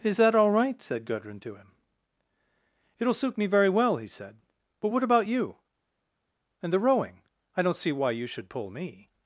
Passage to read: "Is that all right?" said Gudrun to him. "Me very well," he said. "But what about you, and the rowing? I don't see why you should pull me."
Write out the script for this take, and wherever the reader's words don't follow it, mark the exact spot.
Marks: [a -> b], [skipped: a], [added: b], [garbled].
"Is that all right?" said Gudrun to him. [added: It'll suit] "Me very well," he said. "But what about you, and the rowing? I don't see why you should pull me."